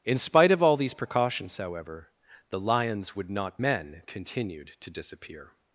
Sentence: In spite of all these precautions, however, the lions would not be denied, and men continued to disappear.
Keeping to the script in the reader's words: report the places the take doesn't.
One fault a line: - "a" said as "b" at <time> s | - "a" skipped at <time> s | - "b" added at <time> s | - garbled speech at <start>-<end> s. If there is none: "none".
- "be denied and" skipped at 3.6 s